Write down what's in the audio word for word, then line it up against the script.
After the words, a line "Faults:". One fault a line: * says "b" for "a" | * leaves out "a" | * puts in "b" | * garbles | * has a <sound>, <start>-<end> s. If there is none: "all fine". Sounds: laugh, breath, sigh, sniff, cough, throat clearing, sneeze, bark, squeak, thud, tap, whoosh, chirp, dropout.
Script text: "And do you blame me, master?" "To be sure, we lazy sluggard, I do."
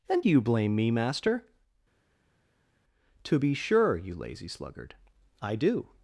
"And do you blame me, master?" "To be sure, you lazy sluggard, I do."
Faults:
* says "you" for "we"